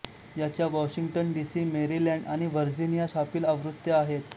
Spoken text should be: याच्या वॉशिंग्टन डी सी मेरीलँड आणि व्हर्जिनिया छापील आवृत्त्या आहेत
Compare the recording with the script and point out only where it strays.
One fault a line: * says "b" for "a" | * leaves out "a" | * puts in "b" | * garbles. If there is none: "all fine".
all fine